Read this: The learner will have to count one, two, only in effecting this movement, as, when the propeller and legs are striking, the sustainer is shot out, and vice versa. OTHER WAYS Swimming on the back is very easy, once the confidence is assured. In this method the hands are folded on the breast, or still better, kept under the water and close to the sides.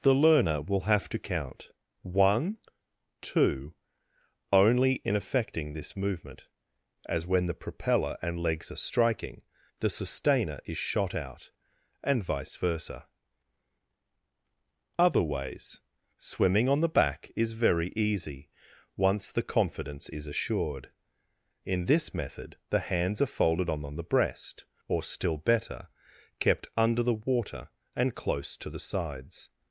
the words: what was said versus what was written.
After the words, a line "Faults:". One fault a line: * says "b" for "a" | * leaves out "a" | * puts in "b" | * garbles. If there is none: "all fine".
The learner will have to count one, two, only in effecting this movement, as, when the propeller and legs are striking, the sustainer is shot out, and vice versa. OTHER WAYS Swimming on the back is very easy, once the confidence is assured. In this method the hands are folded on the breast, or still better, kept under the water and close to the sides.
Faults:
all fine